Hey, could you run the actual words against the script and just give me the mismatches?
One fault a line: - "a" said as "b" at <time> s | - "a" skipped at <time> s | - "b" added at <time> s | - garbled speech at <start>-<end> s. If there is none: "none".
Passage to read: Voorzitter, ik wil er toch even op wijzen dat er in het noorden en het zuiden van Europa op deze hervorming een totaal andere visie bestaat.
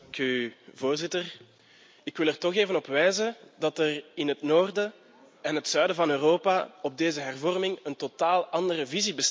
none